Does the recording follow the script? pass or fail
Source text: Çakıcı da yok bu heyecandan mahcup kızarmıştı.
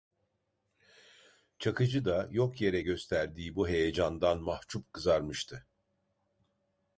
fail